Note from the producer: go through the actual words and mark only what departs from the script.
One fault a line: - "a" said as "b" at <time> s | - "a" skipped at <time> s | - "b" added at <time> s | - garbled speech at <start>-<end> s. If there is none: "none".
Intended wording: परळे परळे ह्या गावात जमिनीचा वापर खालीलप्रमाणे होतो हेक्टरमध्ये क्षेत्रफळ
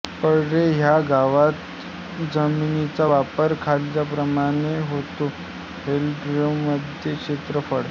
- "परळे" skipped at 0.6 s